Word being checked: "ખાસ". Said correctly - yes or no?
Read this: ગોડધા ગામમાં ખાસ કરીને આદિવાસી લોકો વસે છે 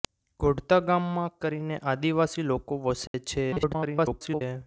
no